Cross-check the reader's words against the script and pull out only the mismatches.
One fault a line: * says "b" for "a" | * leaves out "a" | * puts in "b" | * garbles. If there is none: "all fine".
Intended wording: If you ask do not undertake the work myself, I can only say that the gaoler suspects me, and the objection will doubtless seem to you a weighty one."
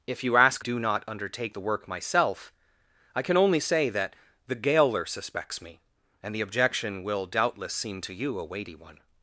all fine